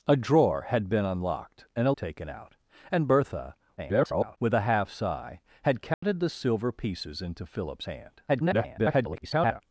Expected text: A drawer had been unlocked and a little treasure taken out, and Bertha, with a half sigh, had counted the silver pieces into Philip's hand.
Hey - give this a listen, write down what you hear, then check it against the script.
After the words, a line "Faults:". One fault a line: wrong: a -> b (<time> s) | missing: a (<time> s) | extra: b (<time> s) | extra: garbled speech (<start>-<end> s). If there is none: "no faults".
A drawer had been unlocked and a taken out, and Bertha, [garbled] with a half sigh, had counted the silver pieces into Philip's hand. [garbled]
Faults:
missing: little treasure (1.9 s)
extra: garbled speech (3.8-4.4 s)
extra: garbled speech (8.3-9.6 s)